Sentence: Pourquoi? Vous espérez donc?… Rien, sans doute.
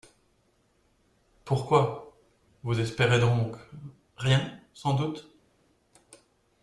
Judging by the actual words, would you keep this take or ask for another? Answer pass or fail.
pass